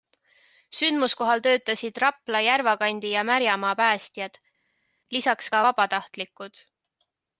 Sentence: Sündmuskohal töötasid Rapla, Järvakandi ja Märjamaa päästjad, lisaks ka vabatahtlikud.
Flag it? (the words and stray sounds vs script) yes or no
no